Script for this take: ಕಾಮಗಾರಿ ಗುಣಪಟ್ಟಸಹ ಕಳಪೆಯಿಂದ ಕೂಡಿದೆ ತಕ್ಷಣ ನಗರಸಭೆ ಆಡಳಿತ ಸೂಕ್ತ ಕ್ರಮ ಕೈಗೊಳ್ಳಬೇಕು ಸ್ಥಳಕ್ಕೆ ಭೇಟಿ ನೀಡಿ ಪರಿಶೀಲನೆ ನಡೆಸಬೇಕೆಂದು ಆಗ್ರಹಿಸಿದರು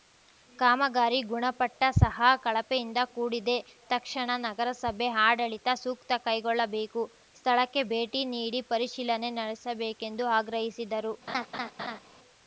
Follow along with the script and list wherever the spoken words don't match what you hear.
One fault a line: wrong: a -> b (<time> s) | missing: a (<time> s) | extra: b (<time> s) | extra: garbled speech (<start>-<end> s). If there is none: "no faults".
missing: ಕ್ರಮ (6.2 s)